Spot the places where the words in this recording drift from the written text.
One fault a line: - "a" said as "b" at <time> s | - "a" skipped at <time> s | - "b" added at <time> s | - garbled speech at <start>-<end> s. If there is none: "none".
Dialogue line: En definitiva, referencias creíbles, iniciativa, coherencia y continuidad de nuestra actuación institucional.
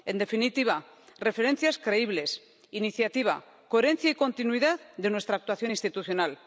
none